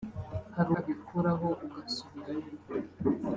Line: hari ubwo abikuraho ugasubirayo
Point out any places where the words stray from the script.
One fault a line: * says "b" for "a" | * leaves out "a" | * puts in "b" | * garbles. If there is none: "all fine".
* leaves out "ubwo"